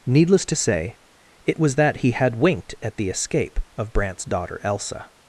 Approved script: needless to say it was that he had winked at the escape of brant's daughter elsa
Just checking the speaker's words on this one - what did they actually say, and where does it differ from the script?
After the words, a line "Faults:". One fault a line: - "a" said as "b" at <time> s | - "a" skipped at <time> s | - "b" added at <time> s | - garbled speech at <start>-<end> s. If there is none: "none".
needless to say it was that he had winked at the escape of brant's daughter elsa
Faults:
none